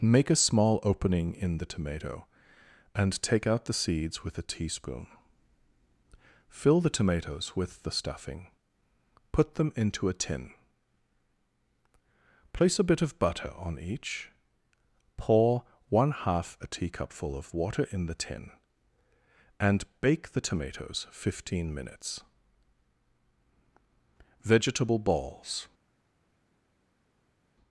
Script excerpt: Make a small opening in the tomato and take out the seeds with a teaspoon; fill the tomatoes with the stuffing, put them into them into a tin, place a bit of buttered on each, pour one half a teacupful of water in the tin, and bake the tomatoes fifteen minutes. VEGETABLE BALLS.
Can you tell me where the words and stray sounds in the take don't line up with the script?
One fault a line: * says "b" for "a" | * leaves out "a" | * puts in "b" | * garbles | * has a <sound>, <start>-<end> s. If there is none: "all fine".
* leaves out "them into"
* says "butter" for "buttered"